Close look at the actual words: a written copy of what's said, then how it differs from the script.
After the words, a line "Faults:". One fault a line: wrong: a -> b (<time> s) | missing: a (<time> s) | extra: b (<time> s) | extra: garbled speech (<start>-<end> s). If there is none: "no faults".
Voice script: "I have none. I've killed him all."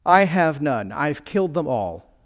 "I have none. I've killed them all."
Faults:
wrong: him -> them (1.5 s)